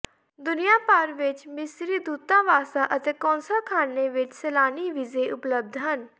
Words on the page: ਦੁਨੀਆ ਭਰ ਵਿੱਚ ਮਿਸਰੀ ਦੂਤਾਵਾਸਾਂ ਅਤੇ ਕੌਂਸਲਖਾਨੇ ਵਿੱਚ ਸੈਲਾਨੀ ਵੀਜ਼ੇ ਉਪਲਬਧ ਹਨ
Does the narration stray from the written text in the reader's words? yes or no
no